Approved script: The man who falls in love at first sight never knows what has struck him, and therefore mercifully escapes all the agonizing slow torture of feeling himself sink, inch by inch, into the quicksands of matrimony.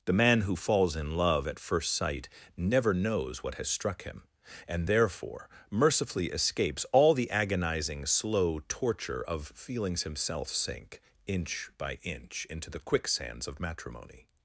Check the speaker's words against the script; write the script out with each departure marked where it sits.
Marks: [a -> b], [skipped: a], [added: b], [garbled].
The man who falls in love at first sight never knows what has struck him, and therefore mercifully escapes all the agonizing slow torture of [feeling -> feelings] himself sink, inch by inch, into the quicksands of matrimony.